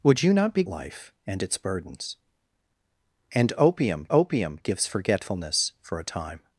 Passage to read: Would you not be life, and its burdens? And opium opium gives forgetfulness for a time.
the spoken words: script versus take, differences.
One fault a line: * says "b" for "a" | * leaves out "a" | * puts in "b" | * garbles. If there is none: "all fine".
all fine